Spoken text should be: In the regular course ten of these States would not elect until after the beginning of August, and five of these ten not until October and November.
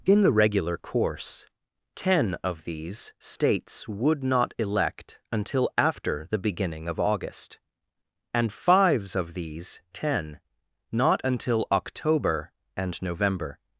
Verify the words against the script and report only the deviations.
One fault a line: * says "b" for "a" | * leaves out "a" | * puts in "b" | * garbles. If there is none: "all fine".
* says "fives" for "five"